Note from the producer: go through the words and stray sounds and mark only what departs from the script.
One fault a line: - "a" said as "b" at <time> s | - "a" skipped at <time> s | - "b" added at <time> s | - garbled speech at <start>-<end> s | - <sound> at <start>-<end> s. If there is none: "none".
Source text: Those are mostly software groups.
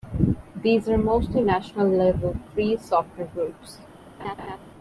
- "Those" said as "These" at 0.6 s
- "national level free" added at 1.4 s
- laugh at 4.2-4.6 s